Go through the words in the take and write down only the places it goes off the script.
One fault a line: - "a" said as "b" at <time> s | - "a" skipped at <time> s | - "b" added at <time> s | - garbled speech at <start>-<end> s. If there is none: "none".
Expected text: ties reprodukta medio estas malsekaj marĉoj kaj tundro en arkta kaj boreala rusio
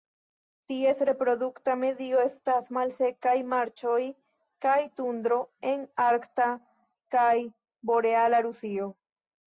none